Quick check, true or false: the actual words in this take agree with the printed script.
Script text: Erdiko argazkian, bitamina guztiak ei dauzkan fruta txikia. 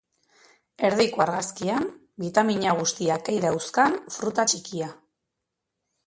true